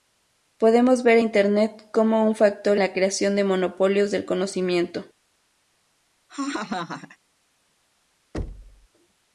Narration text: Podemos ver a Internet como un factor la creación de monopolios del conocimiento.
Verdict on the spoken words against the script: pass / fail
pass